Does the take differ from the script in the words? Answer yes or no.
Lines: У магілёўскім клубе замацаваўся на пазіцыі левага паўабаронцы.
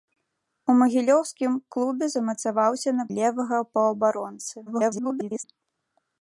yes